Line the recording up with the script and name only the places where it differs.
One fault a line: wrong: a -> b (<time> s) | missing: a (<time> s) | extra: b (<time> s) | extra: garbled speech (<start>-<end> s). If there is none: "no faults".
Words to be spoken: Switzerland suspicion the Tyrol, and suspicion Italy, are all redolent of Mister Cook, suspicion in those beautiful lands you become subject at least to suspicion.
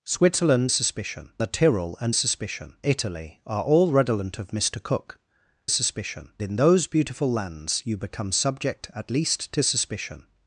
no faults